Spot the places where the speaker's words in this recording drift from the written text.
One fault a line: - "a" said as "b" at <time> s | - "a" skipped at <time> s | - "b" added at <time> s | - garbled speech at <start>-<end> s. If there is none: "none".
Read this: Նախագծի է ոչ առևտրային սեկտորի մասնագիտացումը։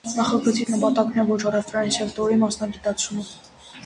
- "նպատակն" added at 0.7 s